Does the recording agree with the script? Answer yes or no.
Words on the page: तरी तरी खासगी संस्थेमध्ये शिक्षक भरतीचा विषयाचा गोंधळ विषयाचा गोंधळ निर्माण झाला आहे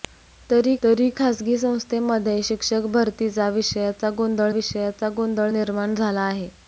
yes